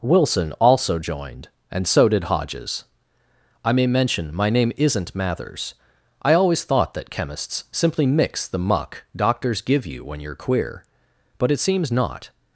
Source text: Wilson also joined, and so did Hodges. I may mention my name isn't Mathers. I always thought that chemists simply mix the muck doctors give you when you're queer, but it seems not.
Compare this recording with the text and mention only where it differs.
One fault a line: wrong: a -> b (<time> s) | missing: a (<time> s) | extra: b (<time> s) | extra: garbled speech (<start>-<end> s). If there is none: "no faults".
no faults